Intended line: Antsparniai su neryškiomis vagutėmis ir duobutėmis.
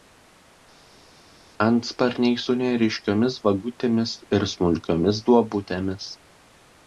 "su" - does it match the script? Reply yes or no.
yes